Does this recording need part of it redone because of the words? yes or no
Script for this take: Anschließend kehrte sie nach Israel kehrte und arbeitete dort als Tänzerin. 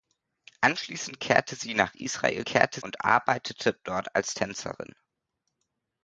no